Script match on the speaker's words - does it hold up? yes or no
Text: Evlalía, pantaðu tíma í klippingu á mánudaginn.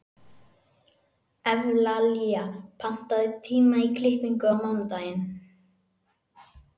yes